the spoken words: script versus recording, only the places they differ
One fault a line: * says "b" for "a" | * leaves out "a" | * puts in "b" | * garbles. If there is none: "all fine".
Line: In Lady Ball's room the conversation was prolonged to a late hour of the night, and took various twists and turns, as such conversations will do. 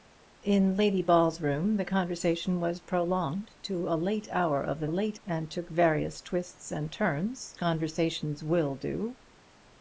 * says "late" for "night"
* leaves out "as such"